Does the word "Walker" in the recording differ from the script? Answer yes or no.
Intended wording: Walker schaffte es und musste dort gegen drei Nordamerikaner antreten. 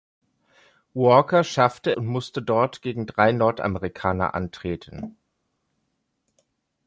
no